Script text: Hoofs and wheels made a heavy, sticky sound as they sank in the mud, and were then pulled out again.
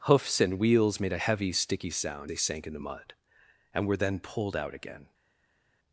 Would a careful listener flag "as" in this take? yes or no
yes